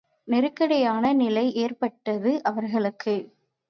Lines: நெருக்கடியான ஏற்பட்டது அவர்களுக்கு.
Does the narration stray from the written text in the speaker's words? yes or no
yes